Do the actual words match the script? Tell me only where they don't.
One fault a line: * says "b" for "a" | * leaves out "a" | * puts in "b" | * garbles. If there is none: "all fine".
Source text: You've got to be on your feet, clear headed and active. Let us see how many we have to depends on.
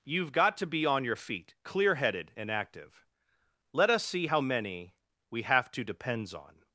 all fine